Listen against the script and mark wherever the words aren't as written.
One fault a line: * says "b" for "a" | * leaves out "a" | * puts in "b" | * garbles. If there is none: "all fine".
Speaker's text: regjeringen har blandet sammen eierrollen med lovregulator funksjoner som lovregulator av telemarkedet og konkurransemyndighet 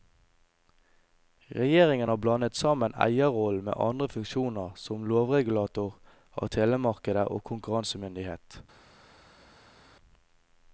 * says "andre" for "lovregulator"